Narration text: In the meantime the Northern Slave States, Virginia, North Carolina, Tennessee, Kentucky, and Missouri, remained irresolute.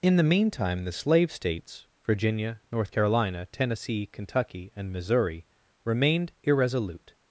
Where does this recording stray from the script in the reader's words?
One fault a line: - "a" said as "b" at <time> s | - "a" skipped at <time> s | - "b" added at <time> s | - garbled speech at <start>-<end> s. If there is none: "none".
- "Northern" skipped at 0.9 s